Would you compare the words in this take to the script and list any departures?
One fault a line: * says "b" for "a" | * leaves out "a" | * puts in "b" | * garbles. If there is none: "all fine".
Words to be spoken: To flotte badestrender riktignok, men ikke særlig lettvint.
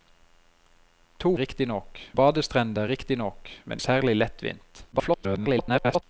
* says "riktignok" for "flotte"
* leaves out "ikke"
* garbles